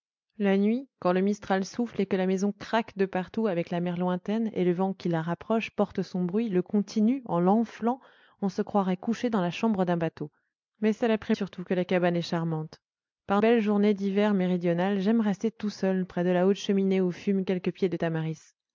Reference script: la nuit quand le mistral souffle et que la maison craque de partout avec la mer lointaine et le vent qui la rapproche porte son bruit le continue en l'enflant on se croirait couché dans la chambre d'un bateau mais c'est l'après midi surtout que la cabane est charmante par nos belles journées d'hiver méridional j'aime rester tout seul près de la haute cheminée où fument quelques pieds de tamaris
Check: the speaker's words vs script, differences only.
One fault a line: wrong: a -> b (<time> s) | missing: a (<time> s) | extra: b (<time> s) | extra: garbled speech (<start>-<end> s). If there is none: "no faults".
missing: midi (11.3 s)
missing: nos (13.4 s)